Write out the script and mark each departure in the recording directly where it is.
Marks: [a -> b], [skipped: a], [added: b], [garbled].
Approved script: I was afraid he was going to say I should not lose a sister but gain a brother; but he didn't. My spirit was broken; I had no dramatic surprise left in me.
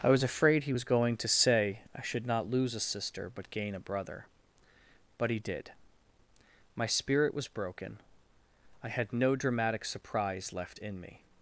I was afraid he was going to say I should not lose a sister but gain a brother; but he [didn't. -> did] My spirit was broken; I had no dramatic surprise left in me.